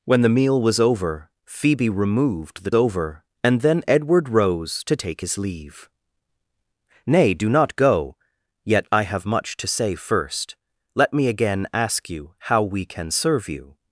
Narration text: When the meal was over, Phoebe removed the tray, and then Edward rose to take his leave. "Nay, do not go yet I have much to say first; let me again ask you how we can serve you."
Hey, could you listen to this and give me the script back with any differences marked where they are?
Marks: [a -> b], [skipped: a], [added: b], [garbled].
When the meal was over, Phoebe removed the [tray, -> over] and then Edward rose to take his leave. "Nay, do not go yet I have much to say first; let me again ask you how we can serve you."